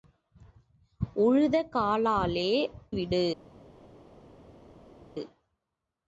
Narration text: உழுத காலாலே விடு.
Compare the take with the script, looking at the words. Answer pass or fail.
pass